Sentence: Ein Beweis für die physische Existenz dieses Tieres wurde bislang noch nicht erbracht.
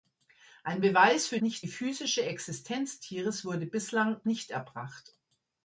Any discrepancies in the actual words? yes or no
yes